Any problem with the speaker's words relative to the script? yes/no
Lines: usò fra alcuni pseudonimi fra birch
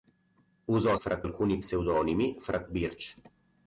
no